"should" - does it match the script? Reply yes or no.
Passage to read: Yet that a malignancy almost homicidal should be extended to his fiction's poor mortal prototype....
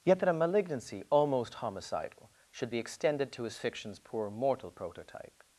yes